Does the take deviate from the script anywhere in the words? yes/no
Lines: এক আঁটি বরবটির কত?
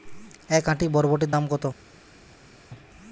yes